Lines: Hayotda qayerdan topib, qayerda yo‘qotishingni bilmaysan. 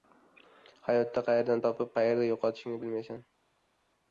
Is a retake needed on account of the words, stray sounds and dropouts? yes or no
no